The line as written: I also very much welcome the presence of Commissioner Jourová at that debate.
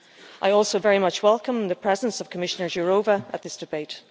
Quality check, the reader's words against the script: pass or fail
fail